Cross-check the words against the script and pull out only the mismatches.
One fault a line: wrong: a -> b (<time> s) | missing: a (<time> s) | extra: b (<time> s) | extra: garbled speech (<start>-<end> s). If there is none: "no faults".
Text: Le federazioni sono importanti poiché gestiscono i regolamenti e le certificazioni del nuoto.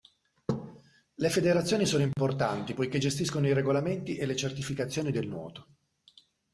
no faults